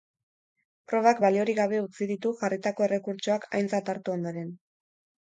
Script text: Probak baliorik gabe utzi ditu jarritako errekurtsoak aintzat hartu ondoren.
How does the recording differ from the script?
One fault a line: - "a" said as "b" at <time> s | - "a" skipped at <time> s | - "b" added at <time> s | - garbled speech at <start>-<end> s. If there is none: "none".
none